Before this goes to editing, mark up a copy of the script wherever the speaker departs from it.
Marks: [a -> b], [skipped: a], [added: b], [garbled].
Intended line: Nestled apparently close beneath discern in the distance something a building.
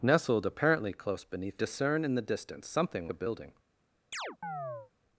Nestled apparently close beneath discern in the distance something a building.